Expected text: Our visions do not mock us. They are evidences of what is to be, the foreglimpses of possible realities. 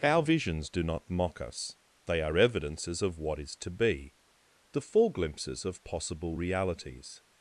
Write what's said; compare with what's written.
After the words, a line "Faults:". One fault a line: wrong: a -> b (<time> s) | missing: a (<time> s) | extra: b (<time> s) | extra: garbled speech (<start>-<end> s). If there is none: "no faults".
Our visions do not mock us. They are evidences of what is to be, the foreglimpses of possible realities.
Faults:
no faults